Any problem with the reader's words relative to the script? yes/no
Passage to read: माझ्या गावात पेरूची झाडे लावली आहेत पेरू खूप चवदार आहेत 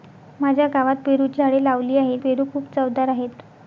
no